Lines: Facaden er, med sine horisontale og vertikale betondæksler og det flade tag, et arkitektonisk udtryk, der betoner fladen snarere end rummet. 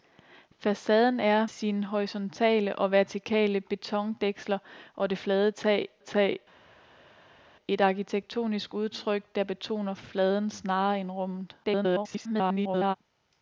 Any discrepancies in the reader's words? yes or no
yes